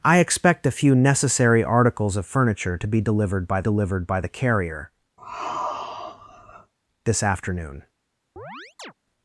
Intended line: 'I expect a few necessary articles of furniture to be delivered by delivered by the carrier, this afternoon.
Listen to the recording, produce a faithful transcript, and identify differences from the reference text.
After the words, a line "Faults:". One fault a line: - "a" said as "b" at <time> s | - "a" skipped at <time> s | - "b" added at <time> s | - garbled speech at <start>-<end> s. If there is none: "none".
'I expect a few necessary articles of furniture to be delivered by delivered by the carrier, this afternoon.
Faults:
none